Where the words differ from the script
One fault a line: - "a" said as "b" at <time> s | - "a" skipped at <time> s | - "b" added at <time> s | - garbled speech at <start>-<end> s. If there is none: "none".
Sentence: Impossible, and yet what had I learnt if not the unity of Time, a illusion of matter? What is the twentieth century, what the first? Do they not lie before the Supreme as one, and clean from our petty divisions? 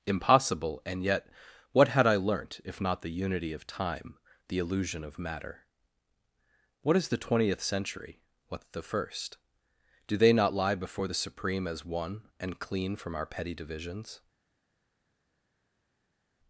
- "a" said as "the" at 4.5 s